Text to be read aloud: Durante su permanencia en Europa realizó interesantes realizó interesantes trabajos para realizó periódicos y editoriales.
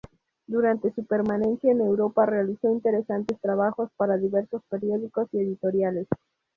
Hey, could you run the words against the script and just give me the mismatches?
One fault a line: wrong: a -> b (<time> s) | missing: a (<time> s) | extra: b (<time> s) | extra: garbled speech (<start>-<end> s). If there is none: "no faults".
missing: realizó interesantes (3.4 s)
wrong: realizó -> diversos (4.2 s)